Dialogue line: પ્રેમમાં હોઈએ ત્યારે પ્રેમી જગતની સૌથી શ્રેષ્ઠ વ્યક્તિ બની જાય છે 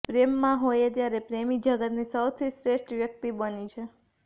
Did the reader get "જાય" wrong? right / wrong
wrong